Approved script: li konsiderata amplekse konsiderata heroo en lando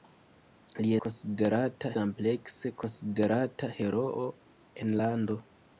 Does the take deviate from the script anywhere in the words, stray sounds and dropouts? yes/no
no